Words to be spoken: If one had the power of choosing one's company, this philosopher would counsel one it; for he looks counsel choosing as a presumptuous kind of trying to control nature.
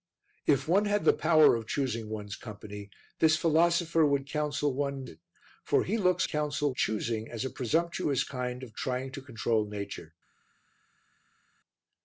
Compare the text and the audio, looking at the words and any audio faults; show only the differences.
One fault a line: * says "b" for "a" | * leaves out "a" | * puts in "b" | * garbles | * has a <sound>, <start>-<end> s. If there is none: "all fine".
all fine